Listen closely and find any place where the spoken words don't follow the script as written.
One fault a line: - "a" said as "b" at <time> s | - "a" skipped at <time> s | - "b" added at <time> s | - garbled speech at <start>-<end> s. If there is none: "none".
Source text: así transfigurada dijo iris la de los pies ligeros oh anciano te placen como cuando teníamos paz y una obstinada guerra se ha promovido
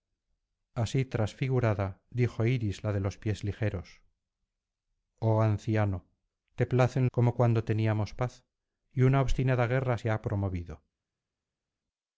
none